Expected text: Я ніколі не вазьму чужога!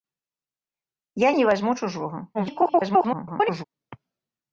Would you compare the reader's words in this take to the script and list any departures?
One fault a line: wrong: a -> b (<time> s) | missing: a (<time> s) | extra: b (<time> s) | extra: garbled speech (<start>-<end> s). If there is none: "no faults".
missing: ніколі (1.3 s)
extra: garbled speech (2.3-3.6 s)